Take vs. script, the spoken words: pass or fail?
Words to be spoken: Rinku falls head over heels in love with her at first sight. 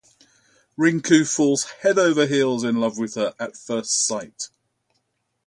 pass